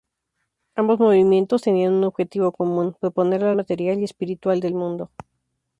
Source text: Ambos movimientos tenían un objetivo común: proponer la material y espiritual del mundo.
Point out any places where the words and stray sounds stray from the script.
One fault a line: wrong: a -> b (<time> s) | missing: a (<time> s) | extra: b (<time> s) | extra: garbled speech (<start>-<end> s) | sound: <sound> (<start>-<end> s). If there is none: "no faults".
no faults